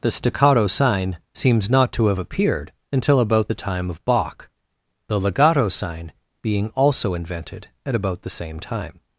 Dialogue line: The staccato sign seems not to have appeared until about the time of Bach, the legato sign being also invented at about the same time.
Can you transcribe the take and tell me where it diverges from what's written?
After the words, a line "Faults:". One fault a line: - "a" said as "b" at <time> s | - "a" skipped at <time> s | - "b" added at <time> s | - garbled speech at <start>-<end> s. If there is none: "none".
The staccato sign seems not to have appeared until about the time of Bach, the legato sign being also invented at about the same time.
Faults:
none